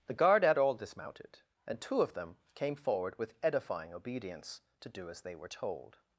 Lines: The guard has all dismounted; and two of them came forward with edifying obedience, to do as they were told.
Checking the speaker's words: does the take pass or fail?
fail